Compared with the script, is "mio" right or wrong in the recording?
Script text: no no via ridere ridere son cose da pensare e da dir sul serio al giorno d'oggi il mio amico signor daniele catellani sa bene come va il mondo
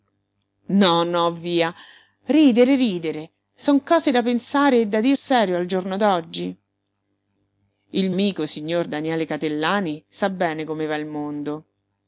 wrong